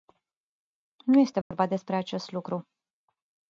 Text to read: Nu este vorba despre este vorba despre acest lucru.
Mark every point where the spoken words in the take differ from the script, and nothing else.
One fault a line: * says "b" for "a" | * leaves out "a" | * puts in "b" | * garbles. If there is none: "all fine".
* leaves out "este vorba despre"